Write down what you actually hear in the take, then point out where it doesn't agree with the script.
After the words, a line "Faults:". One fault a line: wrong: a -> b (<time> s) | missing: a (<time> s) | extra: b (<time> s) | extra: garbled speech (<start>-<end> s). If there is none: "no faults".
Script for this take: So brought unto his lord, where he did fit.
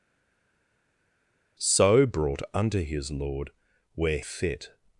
So brought unto his lord, where fit.
Faults:
missing: he did (4.2 s)